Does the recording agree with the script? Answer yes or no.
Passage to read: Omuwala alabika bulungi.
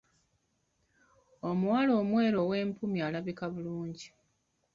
no